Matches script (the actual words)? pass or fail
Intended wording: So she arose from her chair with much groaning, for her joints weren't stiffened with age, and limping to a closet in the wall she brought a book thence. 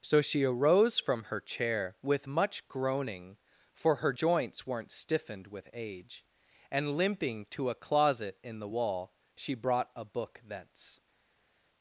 pass